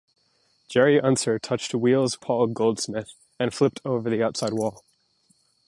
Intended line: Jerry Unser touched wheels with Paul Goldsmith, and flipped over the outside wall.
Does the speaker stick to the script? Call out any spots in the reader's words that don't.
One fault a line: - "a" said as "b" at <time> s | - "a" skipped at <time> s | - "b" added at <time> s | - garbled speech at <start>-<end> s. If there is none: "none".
- "with" skipped at 2.2 s